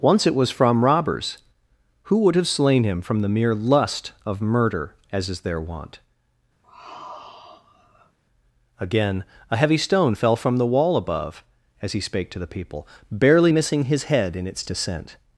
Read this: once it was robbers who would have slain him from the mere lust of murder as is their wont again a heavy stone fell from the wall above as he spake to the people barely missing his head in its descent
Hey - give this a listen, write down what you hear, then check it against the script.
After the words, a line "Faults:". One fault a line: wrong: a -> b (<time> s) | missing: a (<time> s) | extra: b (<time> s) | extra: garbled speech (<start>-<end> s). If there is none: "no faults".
once it was from robbers who would have slain him from the mere lust of murder as is their wont again a heavy stone fell from the wall above as he spake to the people barely missing his head in its descent
Faults:
extra: from (0.5 s)